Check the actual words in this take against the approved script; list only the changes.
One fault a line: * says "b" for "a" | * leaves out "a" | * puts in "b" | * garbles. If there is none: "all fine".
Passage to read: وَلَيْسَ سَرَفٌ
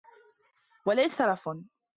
all fine